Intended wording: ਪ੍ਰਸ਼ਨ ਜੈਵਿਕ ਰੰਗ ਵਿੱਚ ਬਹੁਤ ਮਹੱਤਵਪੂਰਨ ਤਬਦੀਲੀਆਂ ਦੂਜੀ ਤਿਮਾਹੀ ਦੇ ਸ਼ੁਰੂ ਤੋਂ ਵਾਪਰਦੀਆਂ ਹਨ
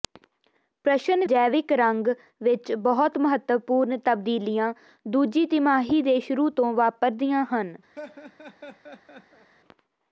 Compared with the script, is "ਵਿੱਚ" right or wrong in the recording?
right